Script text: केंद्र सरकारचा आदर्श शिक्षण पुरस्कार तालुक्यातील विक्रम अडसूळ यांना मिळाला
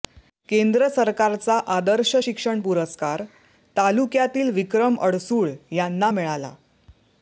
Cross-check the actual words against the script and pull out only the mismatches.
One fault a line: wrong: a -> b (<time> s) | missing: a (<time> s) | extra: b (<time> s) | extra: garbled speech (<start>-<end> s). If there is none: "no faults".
no faults